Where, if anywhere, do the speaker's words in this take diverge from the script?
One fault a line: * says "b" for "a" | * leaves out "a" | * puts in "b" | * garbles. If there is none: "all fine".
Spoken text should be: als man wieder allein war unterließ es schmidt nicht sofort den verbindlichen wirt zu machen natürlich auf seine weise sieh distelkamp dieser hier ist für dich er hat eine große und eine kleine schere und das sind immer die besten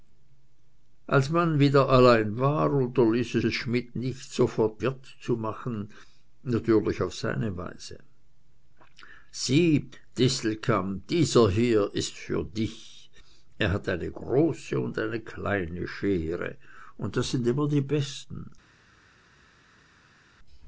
* puts in "es"
* leaves out "den verbindlichen"